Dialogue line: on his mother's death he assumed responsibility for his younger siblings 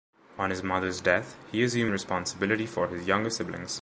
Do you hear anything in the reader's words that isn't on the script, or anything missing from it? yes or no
no